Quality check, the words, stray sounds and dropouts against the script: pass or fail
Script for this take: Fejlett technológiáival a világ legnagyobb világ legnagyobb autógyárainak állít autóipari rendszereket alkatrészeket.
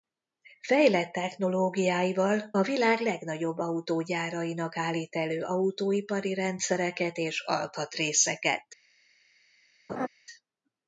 fail